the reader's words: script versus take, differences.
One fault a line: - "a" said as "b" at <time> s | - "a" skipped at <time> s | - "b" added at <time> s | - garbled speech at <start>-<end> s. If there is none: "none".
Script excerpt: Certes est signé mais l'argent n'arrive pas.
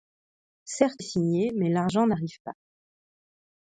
none